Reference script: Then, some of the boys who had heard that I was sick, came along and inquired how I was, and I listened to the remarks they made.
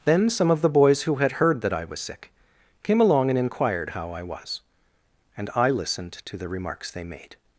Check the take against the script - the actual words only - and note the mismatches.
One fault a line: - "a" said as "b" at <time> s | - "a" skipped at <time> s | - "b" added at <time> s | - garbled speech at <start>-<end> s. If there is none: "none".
none